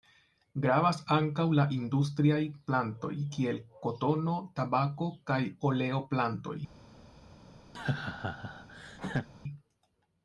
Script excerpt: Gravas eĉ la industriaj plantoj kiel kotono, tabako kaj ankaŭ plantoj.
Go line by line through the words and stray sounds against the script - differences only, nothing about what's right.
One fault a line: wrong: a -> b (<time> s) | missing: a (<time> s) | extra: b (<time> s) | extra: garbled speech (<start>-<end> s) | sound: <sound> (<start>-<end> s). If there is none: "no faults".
wrong: eĉ -> ankaŭ (1.1 s)
wrong: ankaŭ -> oleo (5.7 s)
sound: laugh (7.7-9.3 s)